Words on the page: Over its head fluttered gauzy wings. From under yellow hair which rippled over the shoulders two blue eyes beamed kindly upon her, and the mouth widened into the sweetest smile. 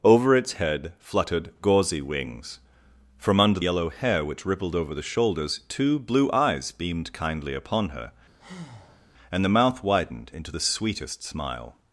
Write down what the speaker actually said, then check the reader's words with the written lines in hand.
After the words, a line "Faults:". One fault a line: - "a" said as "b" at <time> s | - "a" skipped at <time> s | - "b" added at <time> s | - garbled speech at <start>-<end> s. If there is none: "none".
Over its head fluttered gauzy wings. From under yellow hair which rippled over the shoulders two blue eyes beamed kindly upon her, and the mouth widened into the sweetest smile.
Faults:
none